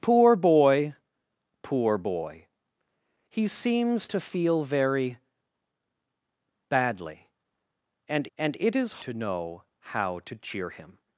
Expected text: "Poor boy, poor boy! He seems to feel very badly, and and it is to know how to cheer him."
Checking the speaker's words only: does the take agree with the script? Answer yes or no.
yes